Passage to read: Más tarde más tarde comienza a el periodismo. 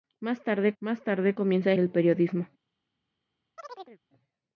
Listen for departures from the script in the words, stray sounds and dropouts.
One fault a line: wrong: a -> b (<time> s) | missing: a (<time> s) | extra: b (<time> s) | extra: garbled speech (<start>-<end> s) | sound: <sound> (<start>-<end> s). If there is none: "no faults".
sound: chirp (3.6-4.0 s)